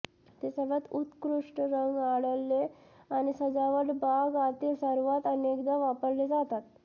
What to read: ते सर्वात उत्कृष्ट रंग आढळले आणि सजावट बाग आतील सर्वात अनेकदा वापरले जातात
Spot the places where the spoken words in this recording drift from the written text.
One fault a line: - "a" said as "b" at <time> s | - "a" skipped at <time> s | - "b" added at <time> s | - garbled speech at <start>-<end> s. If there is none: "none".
none